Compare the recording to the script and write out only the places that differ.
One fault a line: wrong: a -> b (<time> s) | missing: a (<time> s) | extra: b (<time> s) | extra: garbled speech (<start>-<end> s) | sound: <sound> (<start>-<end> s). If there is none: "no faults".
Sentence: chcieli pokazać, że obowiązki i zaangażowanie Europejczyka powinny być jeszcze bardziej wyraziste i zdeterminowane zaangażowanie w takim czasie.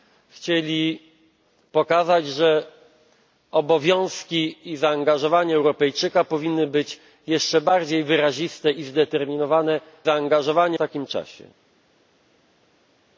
no faults